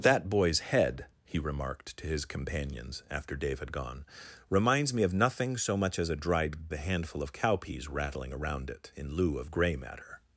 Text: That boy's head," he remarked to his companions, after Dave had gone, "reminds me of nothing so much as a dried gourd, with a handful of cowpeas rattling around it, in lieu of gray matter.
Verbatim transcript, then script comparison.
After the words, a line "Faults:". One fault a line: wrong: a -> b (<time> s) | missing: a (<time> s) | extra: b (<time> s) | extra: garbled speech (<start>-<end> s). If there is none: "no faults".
That boy's head," he remarked to his companions, after Dave had gone, "reminds me of nothing so much as a dried a handful of cowpeas rattling around it, in lieu of gray matter.
Faults:
missing: gourd with (6.7 s)